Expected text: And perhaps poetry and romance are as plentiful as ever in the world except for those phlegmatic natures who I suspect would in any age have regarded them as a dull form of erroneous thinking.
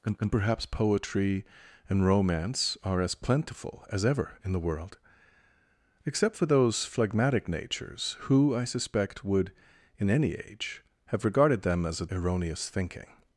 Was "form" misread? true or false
true